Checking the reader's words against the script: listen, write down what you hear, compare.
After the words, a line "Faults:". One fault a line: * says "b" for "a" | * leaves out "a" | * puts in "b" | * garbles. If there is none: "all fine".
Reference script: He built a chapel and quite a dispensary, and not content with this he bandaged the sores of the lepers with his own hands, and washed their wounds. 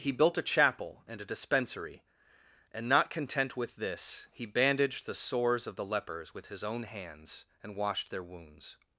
He built a chapel and a dispensary, and not content with this he bandaged the sores of the lepers with his own hands, and washed their wounds.
Faults:
* leaves out "quite"